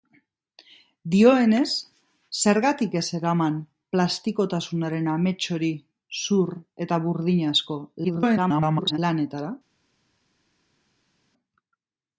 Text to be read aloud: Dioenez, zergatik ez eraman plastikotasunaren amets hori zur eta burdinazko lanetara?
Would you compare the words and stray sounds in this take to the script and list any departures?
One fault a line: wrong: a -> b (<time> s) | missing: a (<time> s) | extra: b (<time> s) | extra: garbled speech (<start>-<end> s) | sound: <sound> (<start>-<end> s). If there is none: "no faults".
extra: garbled speech (8.0-9.0 s)